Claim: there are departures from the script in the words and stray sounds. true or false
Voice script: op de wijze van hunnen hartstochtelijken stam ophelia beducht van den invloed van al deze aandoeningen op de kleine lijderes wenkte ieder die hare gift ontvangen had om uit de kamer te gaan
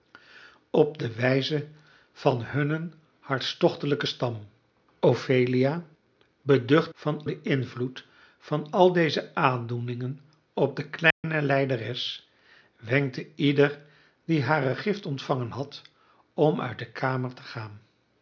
true